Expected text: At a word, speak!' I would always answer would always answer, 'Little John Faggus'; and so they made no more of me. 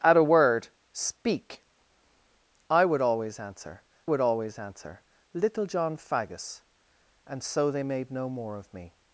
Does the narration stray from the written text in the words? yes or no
no